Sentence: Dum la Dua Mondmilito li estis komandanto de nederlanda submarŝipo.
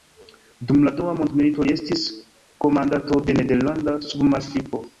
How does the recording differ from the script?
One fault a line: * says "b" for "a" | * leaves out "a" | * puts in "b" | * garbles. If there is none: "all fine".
all fine